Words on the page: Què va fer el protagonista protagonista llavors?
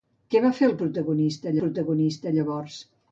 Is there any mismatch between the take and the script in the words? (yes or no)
no